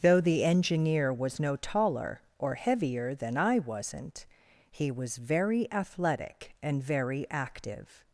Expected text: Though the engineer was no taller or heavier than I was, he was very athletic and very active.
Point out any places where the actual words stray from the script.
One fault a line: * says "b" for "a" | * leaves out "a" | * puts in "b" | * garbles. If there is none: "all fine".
* says "wasn't" for "was"